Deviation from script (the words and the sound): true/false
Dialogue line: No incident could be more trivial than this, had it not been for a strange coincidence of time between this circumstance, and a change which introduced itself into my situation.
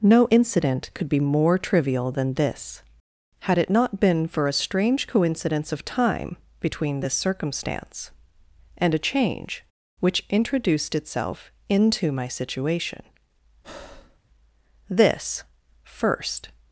true